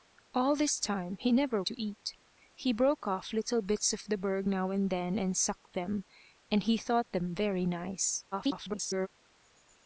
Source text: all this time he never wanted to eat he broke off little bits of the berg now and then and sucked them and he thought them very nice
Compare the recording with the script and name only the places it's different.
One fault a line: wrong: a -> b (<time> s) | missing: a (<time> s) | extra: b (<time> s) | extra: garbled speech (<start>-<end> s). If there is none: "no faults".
missing: wanted (1.6 s)
extra: garbled speech (8.3-9.1 s)